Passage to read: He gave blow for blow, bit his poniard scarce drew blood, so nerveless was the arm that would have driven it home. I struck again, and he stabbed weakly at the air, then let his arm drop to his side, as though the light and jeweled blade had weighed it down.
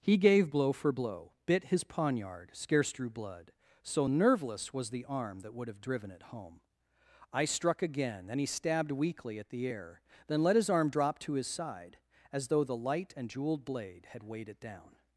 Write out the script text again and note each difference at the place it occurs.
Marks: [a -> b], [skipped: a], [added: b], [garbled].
He gave blow for blow, bit his poniard scarce drew blood, so nerveless was the arm that would have driven it home. I struck again, and he stabbed weakly at the air, then let his arm drop to his side, as though the light and jeweled blade had weighed it down.